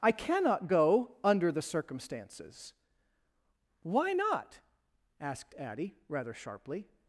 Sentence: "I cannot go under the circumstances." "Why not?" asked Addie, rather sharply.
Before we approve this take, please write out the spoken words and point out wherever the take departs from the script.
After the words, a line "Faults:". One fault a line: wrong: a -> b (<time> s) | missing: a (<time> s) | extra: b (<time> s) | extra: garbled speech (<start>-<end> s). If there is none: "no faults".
"I cannot go under the circumstances." "Why not?" asked Addie, rather sharply.
Faults:
no faults